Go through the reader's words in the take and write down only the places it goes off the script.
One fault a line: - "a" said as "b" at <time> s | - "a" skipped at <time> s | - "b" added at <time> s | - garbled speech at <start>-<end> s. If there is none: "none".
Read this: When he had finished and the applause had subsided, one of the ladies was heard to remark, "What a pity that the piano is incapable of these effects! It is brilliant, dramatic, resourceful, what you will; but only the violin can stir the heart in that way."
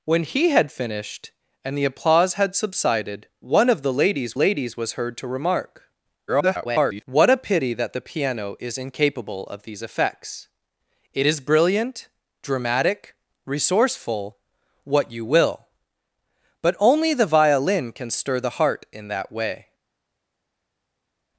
- "ladies" added at 4.3 s
- garbled speech at 6.3-7.0 s